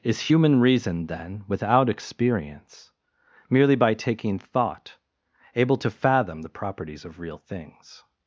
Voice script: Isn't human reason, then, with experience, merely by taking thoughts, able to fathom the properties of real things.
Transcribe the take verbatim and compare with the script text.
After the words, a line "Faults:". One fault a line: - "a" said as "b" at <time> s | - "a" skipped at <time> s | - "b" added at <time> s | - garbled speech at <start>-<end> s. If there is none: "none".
Is human reason, then, without experience, merely by taking thought, able to fathom the properties of real things.
Faults:
- "Isn't" said as "Is" at 0.0 s
- "with" said as "without" at 1.5 s
- "thoughts" said as "thought" at 4.4 s